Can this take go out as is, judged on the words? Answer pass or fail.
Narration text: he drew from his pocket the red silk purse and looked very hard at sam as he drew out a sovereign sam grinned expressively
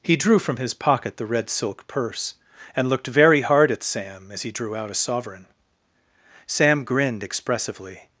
pass